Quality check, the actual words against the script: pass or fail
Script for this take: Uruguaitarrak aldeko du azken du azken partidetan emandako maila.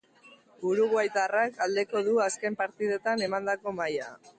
fail